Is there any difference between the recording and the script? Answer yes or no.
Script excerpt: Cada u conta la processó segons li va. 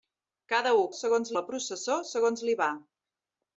yes